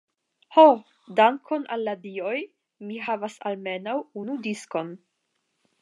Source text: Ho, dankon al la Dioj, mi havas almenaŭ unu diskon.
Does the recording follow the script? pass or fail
pass